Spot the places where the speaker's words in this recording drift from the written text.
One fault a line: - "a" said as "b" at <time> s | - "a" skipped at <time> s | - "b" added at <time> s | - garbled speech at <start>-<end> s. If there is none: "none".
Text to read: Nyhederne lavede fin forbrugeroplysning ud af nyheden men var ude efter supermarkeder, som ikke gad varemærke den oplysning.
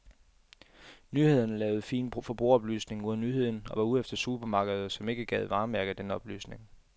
- "men" said as "og" at 3.7 s